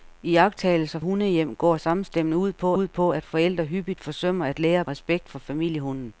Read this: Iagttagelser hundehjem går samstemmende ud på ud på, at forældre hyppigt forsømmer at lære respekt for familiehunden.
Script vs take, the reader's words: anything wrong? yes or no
no